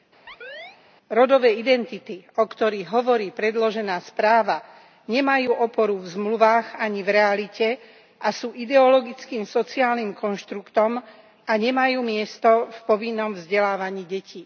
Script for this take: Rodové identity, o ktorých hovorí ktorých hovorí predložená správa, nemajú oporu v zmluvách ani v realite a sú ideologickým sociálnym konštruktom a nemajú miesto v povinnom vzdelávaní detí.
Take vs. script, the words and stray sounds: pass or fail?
fail